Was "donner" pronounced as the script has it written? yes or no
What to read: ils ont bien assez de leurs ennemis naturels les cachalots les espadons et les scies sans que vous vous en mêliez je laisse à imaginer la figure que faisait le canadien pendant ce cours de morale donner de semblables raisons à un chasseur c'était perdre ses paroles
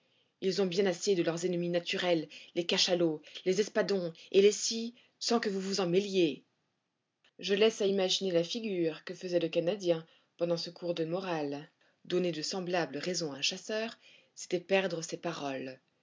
yes